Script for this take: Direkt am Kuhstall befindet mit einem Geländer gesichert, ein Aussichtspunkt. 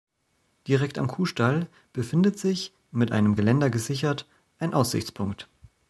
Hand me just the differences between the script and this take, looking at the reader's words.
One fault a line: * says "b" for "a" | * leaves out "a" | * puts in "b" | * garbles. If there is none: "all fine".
* puts in "sich"